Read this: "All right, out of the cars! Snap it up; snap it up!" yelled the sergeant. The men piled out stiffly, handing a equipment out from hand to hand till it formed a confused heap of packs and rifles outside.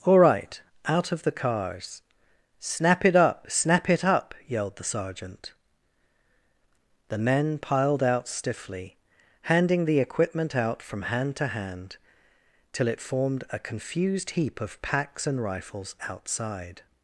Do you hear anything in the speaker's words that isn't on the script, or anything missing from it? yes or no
yes